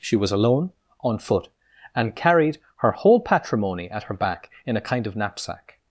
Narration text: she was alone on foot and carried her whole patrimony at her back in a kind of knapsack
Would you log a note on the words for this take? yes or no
no